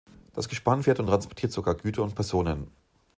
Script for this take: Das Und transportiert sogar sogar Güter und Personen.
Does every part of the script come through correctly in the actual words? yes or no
no